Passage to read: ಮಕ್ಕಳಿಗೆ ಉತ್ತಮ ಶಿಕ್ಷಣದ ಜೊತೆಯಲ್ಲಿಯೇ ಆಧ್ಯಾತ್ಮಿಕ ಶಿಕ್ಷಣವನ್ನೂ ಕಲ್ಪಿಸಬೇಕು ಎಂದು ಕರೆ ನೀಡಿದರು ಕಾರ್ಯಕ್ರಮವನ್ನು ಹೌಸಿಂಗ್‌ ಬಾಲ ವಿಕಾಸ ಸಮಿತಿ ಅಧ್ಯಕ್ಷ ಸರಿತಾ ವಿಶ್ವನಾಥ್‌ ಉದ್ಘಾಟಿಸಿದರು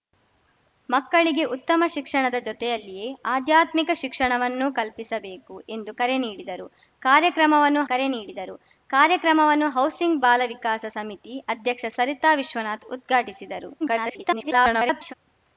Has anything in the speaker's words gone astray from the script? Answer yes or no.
yes